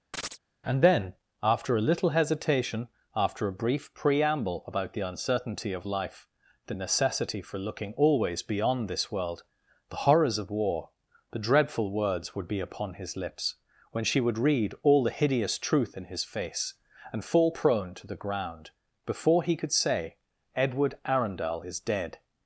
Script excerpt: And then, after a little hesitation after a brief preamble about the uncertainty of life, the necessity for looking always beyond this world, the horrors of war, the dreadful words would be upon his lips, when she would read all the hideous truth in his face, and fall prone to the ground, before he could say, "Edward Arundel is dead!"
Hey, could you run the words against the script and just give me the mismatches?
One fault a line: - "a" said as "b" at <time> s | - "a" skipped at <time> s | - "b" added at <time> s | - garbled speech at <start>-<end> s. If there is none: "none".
none